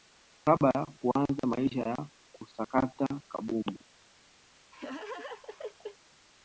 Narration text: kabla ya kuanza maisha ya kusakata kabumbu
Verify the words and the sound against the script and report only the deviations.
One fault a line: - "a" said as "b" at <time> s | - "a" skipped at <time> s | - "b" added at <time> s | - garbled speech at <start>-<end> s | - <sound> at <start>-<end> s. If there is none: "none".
- laugh at 4.7-6.0 s